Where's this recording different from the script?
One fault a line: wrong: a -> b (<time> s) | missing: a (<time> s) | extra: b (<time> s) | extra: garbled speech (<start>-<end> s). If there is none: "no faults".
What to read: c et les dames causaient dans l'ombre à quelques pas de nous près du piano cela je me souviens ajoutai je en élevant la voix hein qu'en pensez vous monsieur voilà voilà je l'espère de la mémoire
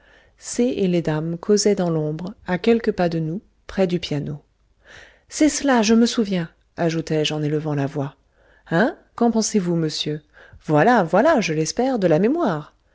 extra: c'est (5.3 s)